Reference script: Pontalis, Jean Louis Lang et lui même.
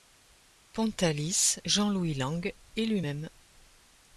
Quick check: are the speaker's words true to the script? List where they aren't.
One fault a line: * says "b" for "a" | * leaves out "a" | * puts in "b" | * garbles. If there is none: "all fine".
all fine